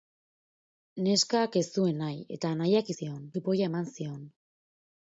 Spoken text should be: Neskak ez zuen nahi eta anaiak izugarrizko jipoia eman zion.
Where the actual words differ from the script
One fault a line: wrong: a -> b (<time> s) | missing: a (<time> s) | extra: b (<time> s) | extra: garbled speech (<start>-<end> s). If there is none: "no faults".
wrong: izugarrizko -> zion (3.0 s)